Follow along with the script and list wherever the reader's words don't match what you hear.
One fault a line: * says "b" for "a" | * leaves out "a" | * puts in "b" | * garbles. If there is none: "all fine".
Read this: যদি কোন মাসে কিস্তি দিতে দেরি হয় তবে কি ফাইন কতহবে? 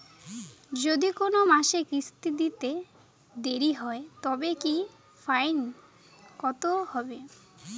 all fine